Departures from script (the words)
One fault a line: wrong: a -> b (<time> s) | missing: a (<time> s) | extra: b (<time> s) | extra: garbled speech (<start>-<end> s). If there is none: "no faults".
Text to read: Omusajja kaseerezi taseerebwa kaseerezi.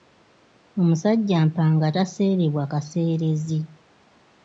wrong: kaseerezi -> mpanga (1.5 s)